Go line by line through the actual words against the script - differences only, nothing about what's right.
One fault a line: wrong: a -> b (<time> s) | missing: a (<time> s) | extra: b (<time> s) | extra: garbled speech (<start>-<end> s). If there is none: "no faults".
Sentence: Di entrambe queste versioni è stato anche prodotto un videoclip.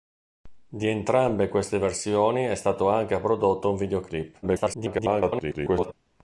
extra: garbled speech (4.4-5.9 s)